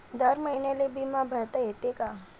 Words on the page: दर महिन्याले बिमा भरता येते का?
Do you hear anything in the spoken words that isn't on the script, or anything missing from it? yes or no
no